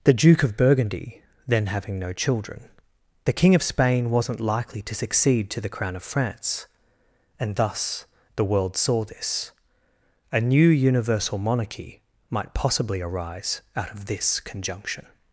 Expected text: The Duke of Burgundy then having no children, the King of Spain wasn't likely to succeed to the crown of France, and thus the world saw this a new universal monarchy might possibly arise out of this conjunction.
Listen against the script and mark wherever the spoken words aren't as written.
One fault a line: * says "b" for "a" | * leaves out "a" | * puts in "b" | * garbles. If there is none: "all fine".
all fine